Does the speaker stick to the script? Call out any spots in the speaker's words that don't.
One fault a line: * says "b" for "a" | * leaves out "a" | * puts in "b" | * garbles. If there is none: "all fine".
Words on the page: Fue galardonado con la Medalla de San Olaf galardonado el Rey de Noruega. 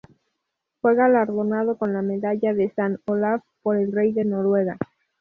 * says "por" for "galardonado"